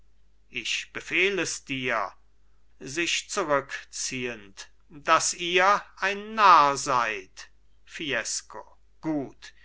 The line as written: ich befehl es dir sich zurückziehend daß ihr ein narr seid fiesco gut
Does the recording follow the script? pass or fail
pass